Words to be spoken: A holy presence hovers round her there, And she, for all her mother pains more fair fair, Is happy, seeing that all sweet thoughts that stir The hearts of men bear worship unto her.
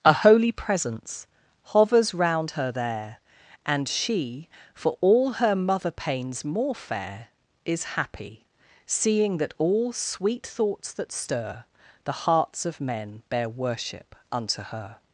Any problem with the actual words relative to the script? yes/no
yes